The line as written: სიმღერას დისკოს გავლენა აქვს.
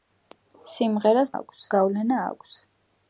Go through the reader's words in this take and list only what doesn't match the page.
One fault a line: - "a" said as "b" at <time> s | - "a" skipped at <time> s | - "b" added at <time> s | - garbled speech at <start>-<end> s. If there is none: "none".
- "დისკოს" said as "აქვს" at 1.3 s